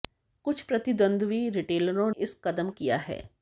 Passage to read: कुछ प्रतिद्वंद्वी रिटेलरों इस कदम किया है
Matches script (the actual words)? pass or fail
pass